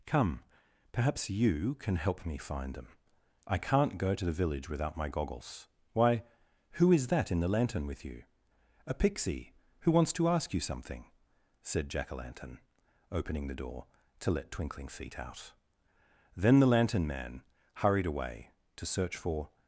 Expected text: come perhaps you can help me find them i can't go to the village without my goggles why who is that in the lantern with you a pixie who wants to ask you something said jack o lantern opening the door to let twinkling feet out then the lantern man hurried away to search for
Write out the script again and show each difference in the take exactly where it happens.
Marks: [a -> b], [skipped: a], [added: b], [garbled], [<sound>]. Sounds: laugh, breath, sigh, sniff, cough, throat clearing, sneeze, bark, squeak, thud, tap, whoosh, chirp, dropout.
come perhaps you can help me find them i can't go to the village without my goggles why who is that in the lantern with you a pixie who wants to ask you something said jack o lantern opening the door to let twinkling feet out then the lantern man hurried away to search for